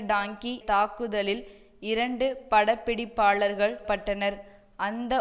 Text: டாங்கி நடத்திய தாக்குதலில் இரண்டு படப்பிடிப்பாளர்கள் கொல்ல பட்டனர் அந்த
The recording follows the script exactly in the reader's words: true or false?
false